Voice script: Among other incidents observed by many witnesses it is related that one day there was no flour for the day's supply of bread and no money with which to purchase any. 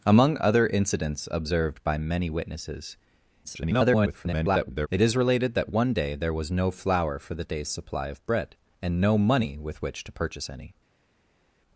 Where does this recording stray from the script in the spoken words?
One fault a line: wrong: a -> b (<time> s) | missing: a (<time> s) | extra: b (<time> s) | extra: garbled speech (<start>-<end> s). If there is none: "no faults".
extra: garbled speech (3.4-4.9 s)